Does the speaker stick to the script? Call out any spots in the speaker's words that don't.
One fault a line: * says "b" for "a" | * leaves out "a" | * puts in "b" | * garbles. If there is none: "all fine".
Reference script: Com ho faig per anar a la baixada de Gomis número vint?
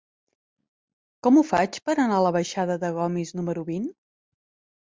all fine